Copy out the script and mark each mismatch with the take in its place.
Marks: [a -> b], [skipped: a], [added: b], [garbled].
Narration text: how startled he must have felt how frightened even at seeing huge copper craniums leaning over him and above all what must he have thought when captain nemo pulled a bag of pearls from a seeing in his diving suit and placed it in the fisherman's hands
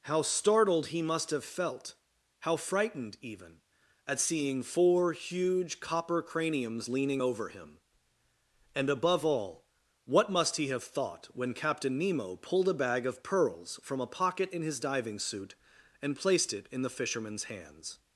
how startled he must have felt how frightened even at seeing [added: four] huge copper craniums leaning over him and above all what must he have thought when captain nemo pulled a bag of pearls from a [seeing -> pocket] in his diving suit and placed it in the fisherman's hands